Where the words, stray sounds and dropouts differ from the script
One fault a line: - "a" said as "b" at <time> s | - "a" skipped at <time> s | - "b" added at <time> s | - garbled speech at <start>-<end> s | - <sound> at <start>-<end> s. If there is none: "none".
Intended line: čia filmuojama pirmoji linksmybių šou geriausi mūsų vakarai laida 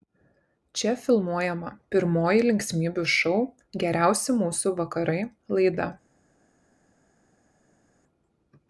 none